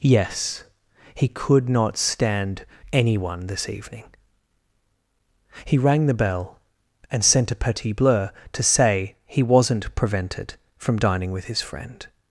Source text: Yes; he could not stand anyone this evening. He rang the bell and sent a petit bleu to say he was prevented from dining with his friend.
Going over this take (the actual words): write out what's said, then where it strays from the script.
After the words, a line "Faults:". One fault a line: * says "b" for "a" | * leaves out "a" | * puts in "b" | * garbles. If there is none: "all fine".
Yes; he could not stand anyone this evening. He rang the bell and sent a petit bleu to say he wasn't prevented from dining with his friend.
Faults:
* says "wasn't" for "was"